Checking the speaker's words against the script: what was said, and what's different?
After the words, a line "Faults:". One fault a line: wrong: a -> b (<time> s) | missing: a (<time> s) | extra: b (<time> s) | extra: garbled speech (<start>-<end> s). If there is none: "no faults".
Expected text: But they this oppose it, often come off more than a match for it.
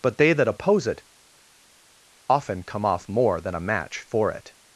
But they that oppose it, often come off more than a match for it.
Faults:
wrong: this -> that (0.3 s)